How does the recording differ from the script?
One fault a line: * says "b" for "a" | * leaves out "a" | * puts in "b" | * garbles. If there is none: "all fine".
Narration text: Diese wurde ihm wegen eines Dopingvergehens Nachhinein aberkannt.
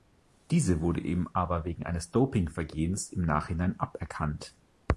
* puts in "aber"
* puts in "im"